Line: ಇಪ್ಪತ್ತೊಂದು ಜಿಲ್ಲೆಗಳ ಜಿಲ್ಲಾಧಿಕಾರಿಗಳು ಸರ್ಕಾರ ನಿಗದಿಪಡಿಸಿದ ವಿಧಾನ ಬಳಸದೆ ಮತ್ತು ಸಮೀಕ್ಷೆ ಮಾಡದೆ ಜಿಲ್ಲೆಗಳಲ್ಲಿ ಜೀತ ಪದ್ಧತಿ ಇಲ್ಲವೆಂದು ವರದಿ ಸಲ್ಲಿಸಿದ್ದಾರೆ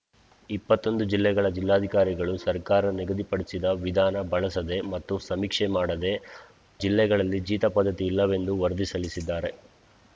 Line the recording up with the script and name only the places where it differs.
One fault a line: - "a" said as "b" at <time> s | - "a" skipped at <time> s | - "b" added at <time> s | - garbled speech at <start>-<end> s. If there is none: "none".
none